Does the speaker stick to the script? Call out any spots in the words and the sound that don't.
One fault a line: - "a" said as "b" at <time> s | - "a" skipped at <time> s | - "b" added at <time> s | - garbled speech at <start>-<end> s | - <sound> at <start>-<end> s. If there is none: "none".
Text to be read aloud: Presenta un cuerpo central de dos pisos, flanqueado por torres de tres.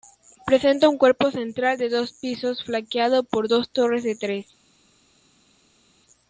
- "dos" added at 3.5 s